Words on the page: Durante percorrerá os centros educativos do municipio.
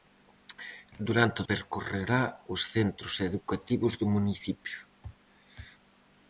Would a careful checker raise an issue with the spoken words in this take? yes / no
no